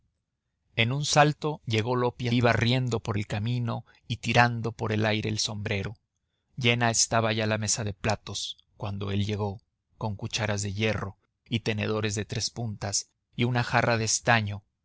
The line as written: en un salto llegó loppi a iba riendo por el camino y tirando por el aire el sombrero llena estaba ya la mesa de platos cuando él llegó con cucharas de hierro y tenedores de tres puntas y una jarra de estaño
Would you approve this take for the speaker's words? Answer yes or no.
yes